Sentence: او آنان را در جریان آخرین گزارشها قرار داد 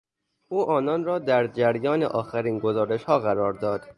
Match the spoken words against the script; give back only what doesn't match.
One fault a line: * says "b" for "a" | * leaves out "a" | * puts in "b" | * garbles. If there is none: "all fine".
all fine